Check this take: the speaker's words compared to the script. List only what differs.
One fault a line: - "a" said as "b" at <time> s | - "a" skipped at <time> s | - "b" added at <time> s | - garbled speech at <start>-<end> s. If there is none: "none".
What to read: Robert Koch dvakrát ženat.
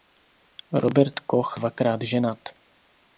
none